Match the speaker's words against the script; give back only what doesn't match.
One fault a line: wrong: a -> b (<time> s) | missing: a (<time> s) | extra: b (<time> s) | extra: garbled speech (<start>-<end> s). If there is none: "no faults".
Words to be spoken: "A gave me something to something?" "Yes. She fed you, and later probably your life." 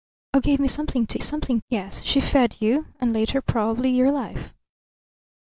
no faults